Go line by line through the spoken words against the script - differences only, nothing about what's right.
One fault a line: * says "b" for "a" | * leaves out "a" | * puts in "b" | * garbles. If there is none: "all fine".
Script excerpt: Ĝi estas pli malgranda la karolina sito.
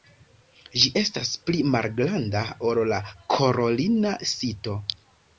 * puts in "ol"